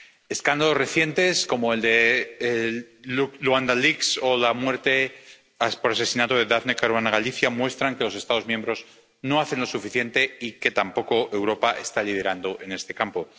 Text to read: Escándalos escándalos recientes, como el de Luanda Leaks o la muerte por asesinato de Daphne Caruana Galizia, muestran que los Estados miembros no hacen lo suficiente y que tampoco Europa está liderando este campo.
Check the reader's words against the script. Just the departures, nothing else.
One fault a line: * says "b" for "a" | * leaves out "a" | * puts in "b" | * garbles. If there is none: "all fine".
* leaves out "escándalos"
* puts in "en"